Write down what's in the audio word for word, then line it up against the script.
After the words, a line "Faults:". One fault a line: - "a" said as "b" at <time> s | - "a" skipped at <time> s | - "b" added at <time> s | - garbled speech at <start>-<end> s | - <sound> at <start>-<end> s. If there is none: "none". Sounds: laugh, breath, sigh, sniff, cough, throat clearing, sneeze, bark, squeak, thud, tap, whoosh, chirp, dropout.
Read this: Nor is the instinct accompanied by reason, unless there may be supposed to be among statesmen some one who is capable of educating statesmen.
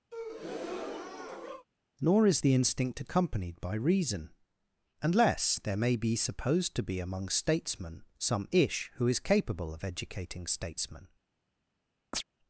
Nor is the instinct accompanied by reason, unless there may be supposed to be among statesmen some ish who is capable of educating statesmen.
Faults:
- breath at 0.1-1.7 s
- "one" said as "ish" at 8.5 s
- chirp at 12.1-12.2 s